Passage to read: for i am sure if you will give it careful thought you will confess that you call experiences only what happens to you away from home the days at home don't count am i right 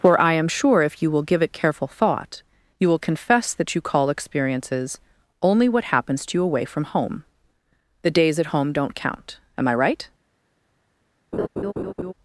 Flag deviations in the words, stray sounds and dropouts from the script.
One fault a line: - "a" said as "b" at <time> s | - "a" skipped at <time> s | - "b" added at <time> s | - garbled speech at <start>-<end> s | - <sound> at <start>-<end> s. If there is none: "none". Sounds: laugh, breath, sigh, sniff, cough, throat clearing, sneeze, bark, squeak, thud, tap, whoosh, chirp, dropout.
- laugh at 11.3-12.1 s